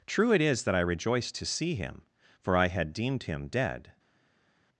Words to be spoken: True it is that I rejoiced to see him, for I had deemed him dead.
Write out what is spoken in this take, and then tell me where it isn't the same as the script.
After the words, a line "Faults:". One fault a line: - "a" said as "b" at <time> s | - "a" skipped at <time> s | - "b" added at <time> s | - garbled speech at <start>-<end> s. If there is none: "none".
True it is that I rejoiced to see him, for I had deemed him dead.
Faults:
none